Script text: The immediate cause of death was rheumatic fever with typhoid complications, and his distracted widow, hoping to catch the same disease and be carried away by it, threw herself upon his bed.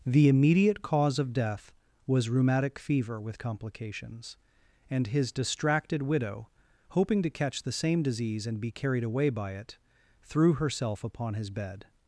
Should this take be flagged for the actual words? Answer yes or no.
yes